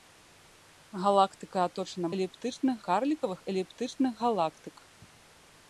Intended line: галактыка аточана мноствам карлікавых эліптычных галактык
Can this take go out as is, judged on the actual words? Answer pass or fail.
fail